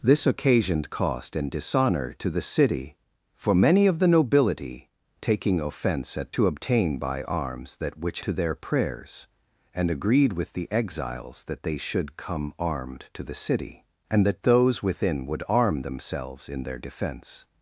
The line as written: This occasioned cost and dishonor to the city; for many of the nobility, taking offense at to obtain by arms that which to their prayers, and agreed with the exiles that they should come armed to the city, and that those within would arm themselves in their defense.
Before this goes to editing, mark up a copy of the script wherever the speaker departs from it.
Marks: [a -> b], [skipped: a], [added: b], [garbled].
This occasioned cost and dishonor to the city; for many of the nobility, taking offense at to obtain by arms that which to their prayers, and agreed with the exiles that they should come armed to the city, and that those within would arm themselves in their defense.